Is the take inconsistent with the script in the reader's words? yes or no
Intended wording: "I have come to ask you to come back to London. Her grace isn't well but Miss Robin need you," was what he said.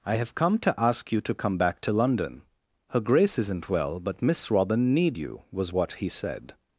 no